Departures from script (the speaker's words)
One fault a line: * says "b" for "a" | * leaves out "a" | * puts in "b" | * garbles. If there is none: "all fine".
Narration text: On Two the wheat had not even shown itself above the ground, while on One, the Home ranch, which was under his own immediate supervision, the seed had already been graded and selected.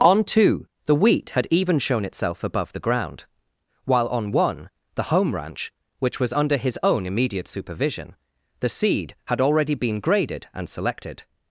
* leaves out "not"